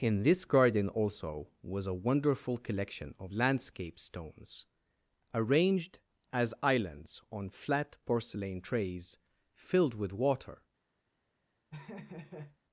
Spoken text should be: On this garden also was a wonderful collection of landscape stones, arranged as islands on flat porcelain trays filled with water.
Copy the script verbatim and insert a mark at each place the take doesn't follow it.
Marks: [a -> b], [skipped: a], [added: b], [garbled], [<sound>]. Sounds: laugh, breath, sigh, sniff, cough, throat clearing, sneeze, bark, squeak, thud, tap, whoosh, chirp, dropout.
[On -> In] this garden also was a wonderful collection of landscape stones, arranged as islands on flat porcelain trays filled with water. [laugh]